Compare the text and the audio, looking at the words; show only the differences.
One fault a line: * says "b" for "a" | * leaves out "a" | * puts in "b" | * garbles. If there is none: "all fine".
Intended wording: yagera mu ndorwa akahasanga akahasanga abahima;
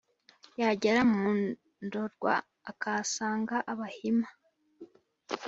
* leaves out "akahasanga"